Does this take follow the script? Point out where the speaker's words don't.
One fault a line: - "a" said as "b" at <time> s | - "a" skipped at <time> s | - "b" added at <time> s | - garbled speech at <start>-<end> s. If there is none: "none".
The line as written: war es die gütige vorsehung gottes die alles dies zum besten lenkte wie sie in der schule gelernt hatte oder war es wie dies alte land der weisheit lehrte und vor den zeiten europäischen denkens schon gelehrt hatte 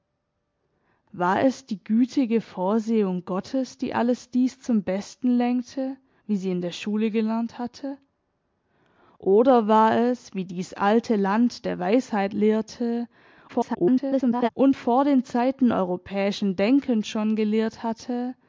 - garbled speech at 13.5-14.5 s